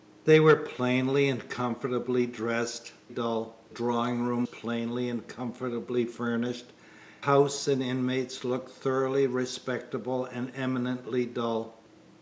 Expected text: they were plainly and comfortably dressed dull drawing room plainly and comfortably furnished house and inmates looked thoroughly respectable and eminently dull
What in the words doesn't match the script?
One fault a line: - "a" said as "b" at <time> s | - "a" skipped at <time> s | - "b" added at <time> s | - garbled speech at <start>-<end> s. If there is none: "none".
none